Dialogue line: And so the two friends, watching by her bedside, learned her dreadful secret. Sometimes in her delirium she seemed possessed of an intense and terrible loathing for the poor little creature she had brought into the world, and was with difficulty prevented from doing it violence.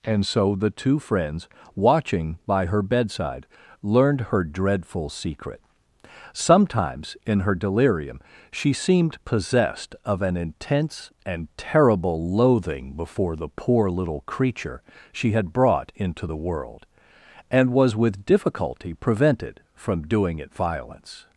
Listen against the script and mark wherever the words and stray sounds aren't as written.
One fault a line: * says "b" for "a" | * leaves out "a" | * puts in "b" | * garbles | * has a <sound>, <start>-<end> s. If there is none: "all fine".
* says "before" for "for"